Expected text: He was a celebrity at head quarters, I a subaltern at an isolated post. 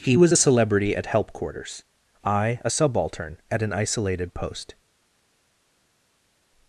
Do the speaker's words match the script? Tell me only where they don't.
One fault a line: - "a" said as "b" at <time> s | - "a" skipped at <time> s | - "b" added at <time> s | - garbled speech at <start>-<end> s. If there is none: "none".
- "head" said as "help" at 1.1 s